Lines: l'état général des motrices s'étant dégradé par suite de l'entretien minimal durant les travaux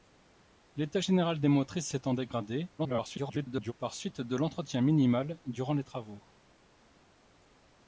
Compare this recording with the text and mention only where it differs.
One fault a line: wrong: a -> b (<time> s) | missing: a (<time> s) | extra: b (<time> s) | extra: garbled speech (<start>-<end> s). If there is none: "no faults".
extra: garbled speech (2.8-3.7 s)